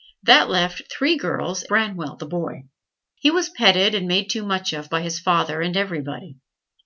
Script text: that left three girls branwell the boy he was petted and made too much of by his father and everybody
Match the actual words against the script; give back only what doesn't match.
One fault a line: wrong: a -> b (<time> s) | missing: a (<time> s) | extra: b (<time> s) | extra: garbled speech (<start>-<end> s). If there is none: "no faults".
no faults